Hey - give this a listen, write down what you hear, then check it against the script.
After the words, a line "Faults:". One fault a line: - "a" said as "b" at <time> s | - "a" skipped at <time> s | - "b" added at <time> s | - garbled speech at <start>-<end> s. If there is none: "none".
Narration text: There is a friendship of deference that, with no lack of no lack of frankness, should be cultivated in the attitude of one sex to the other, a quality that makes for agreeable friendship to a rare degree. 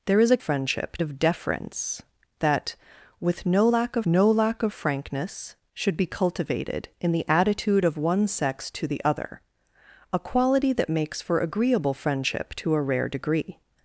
There is a friendship of deference that, with no lack of no lack of frankness, should be cultivated in the attitude of one sex to the other, a quality that makes for agreeable friendship to a rare degree.
Faults:
none